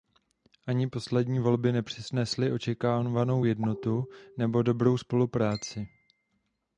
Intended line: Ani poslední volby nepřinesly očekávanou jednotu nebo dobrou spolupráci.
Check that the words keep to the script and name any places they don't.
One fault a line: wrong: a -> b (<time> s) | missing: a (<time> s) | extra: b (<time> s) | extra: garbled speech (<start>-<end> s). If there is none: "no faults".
no faults